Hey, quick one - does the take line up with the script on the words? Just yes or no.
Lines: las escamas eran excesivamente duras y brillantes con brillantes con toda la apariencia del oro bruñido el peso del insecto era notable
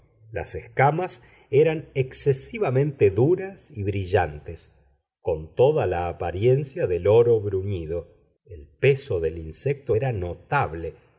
no